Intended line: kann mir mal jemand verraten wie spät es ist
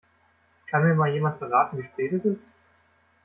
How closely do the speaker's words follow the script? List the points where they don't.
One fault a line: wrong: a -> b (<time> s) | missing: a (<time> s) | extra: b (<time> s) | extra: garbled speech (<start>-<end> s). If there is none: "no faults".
no faults